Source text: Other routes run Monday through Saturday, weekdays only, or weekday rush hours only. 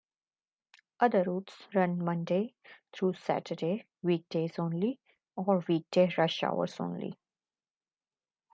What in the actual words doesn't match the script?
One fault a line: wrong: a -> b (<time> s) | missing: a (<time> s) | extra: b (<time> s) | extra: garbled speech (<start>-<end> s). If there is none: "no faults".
no faults